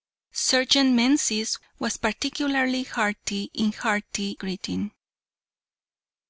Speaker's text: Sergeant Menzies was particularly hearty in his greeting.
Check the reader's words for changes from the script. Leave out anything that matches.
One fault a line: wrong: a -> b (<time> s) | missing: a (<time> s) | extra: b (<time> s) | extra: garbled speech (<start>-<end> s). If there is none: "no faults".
wrong: his -> hearty (3.7 s)